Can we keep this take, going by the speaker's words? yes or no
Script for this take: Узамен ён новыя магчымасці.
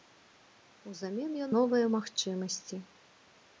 yes